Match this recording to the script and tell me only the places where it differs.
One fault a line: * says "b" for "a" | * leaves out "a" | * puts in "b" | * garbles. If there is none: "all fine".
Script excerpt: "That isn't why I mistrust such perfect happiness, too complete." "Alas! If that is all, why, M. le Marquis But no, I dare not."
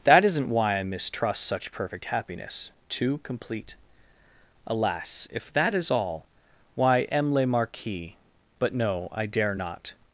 all fine